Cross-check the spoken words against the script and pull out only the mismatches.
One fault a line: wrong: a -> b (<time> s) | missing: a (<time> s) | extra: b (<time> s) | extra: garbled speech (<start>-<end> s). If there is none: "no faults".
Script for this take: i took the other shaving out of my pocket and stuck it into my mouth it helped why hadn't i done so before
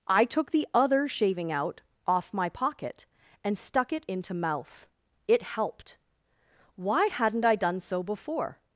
wrong: of -> off (2.1 s)
missing: my (4.3 s)